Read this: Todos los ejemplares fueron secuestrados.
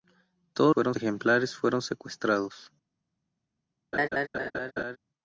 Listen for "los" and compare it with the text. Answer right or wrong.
wrong